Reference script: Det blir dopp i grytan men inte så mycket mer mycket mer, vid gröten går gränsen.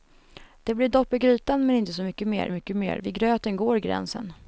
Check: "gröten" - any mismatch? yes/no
no